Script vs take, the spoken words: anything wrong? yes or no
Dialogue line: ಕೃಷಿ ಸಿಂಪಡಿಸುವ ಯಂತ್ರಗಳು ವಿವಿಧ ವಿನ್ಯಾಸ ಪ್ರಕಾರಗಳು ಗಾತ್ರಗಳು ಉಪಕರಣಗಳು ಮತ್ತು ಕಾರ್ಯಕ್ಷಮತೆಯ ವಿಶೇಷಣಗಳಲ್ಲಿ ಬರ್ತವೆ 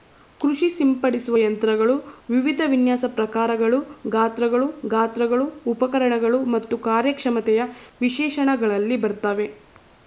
yes